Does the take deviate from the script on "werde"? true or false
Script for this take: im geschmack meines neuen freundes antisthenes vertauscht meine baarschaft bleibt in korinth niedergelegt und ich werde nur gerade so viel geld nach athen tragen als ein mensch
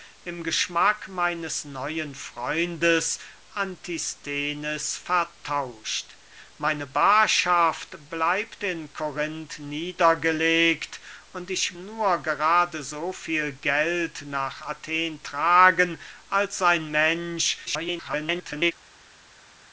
true